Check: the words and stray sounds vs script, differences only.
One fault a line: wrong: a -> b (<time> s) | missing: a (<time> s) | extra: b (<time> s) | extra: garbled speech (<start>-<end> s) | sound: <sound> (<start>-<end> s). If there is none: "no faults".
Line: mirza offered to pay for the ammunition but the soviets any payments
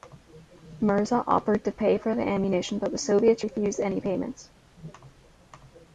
extra: refused (3.4 s)